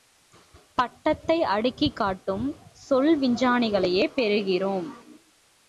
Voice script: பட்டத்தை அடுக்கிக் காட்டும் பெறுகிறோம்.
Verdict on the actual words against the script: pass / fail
fail